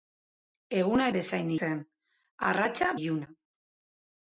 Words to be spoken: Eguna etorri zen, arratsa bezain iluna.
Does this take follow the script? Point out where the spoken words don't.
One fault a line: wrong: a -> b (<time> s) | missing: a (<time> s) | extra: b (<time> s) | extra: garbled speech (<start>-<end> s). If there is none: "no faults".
wrong: etorri -> bezain (1.2 s)
missing: bezain (2.9 s)